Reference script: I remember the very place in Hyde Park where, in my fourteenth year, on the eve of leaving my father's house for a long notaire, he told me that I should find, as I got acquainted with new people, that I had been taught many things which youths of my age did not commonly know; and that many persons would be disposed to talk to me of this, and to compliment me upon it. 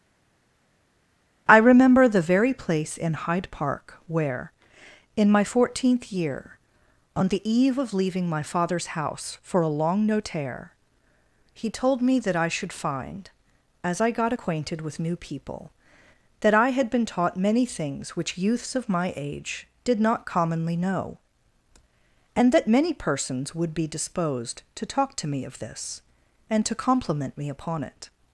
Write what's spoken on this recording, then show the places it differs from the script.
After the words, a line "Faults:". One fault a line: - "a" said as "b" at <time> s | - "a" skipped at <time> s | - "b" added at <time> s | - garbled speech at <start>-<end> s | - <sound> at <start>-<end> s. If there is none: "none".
I remember the very place in Hyde Park where, in my fourteenth year, on the eve of leaving my father's house for a long notaire, he told me that I should find, as I got acquainted with new people, that I had been taught many things which youths of my age did not commonly know; and that many persons would be disposed to talk to me of this, and to compliment me upon it.
Faults:
none